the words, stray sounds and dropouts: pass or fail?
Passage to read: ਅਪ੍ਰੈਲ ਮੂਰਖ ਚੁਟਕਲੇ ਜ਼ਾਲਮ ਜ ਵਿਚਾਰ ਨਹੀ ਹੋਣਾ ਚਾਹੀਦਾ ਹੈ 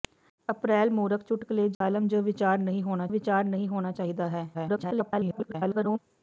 fail